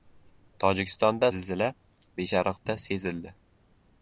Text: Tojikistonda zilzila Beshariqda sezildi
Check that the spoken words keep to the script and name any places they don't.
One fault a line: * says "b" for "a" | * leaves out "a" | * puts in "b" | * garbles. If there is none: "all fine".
all fine